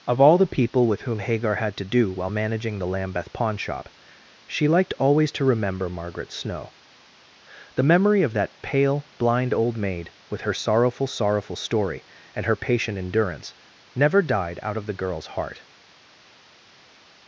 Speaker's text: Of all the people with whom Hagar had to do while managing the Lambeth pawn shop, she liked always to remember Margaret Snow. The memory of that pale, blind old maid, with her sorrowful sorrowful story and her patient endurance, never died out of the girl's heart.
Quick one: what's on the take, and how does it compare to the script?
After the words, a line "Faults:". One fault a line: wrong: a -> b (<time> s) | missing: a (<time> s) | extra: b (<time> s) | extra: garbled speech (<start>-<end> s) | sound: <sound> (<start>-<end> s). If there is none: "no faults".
Of all the people with whom Hagar had to do while managing the Lambeth pawn shop, she liked always to remember Margaret Snow. The memory of that pale, blind old maid, with her sorrowful sorrowful story and her patient endurance, never died out of the girl's heart.
Faults:
no faults